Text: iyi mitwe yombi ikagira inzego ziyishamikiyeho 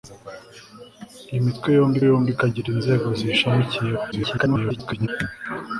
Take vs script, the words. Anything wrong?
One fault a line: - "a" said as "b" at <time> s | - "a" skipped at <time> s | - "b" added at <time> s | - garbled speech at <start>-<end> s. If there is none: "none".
- "yombi" added at 2.1 s
- garbled speech at 4.1-5.1 s